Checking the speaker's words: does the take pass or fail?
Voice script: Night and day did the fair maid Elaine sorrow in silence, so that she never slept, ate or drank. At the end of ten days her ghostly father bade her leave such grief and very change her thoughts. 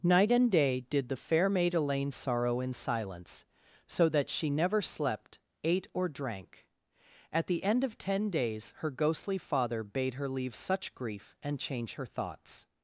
fail